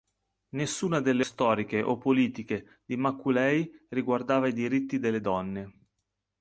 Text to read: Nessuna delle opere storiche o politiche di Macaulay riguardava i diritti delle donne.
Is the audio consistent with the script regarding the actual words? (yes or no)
no